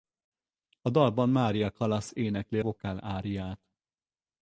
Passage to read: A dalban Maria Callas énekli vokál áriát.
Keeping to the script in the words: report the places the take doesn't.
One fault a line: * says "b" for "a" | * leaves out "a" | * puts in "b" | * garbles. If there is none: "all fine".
all fine